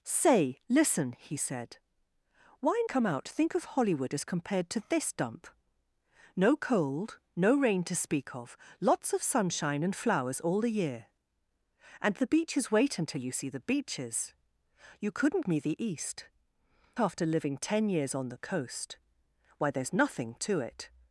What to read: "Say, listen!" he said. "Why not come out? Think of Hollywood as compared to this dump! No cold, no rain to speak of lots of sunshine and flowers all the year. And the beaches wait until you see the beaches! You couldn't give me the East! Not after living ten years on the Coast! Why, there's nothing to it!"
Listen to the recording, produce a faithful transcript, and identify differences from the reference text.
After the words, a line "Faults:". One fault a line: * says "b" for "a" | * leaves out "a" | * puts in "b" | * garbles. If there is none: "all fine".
"Say, listen!" he said. "Why come out? Think of Hollywood as compared to this dump! No cold, no rain to speak of lots of sunshine and flowers all the year. And the beaches wait until you see the beaches! You couldn't me the East! After living ten years on the Coast! Why, there's nothing to it!"
Faults:
* leaves out "not"
* leaves out "give"
* leaves out "Not"